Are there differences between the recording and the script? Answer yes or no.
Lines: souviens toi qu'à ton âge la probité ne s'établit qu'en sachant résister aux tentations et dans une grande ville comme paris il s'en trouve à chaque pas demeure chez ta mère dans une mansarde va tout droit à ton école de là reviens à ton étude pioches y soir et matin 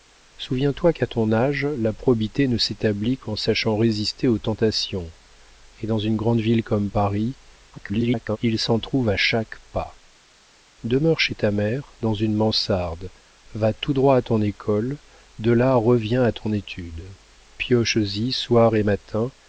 yes